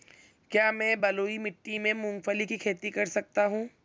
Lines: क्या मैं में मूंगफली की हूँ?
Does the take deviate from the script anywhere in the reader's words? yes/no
yes